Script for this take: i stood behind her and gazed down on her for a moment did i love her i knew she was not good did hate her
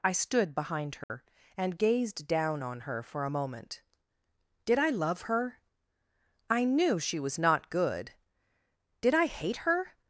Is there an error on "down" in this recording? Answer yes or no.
no